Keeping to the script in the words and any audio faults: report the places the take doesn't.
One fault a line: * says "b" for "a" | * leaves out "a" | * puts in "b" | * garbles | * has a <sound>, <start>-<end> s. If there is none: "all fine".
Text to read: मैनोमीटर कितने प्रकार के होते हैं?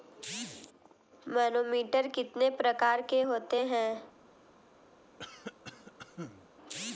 * has a cough, 5.2-6.5 s